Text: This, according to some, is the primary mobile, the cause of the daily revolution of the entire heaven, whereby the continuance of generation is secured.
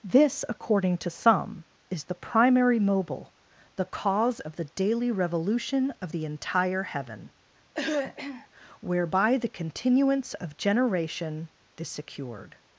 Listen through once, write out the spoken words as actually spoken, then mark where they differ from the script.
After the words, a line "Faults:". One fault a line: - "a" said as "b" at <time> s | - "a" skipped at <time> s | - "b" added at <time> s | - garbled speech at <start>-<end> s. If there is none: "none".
This, according to some, is the primary mobile, the cause of the daily revolution of the entire heaven, whereby the continuance of generation is secured.
Faults:
none